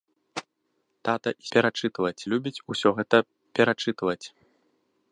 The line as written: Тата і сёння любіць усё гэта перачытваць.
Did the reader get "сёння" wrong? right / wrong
wrong